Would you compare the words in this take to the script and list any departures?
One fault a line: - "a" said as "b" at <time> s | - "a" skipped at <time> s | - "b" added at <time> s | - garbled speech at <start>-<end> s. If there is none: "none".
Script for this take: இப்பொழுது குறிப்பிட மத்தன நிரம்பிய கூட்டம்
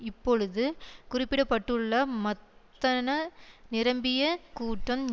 - "பட்டுள்ள" added at 1.4 s